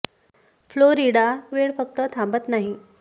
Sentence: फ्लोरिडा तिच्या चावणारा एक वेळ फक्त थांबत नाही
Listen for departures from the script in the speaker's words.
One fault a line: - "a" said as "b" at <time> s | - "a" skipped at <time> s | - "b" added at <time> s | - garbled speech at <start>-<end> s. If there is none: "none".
- "तिच्या चावणारा एक" skipped at 1.2 s